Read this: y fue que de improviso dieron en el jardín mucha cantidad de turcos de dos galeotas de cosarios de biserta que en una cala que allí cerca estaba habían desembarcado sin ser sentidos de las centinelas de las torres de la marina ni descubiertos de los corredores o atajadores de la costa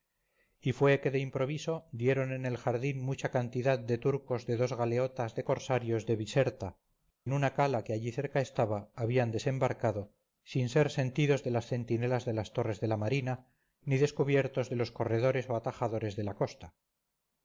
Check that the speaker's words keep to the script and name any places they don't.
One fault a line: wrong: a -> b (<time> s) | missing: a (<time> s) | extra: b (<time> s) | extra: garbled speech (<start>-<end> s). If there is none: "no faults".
missing: que (6.8 s)